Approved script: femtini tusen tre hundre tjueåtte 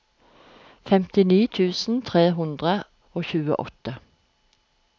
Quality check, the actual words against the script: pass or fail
fail